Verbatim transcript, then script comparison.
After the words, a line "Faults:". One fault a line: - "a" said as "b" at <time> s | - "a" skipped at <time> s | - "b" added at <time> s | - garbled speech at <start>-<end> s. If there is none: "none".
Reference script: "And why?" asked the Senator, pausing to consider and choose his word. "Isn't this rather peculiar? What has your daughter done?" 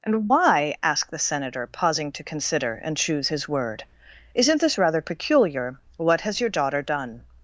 "And why?" asked the Senator, pausing to consider and choose his word. "Isn't this rather peculiar? What has your daughter done?"
Faults:
none